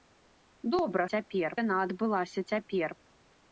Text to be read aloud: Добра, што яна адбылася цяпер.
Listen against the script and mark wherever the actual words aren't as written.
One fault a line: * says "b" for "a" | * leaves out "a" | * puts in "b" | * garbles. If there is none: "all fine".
* says "цяпер" for "што"